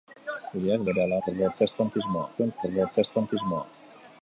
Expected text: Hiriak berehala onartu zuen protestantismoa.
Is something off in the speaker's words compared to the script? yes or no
yes